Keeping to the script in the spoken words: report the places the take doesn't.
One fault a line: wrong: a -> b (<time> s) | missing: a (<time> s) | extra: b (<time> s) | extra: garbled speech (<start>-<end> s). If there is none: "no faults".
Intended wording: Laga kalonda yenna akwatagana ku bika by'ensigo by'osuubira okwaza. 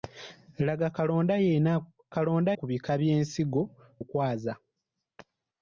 wrong: akwatagana -> kalonda (2.1 s)
missing: by'osuubira (3.6 s)